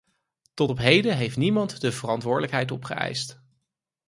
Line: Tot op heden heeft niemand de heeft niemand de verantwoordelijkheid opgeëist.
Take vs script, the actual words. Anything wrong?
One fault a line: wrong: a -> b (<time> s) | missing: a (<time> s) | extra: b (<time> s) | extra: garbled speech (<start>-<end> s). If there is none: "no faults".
missing: heeft niemand de (1.9 s)